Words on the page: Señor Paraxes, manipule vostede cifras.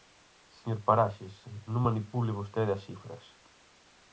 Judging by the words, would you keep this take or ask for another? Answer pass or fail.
fail